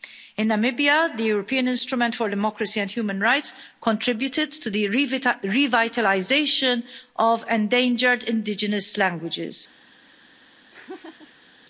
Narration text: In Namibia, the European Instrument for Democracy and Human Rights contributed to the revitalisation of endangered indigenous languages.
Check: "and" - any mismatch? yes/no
no